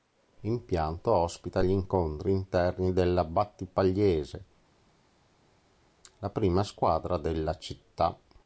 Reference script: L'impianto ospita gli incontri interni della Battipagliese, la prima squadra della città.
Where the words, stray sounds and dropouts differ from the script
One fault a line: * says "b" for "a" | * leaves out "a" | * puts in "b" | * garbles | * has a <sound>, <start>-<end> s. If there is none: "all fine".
all fine